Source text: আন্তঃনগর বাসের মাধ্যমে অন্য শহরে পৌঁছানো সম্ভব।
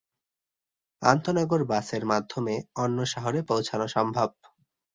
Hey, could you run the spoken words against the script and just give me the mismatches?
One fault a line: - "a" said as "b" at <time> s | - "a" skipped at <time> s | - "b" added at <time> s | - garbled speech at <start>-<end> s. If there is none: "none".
none